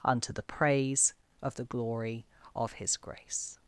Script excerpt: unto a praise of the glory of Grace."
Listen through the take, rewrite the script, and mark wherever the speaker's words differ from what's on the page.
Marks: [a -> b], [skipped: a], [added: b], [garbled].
unto [a -> the] praise of the glory of [added: His] Grace."